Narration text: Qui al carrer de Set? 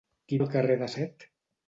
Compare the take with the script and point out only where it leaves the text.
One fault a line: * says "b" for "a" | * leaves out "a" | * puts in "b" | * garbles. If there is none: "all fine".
all fine